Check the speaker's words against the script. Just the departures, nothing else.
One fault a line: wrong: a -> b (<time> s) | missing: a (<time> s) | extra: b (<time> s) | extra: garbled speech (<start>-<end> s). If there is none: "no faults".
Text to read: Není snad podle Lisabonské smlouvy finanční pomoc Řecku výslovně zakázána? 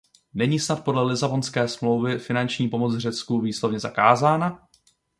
no faults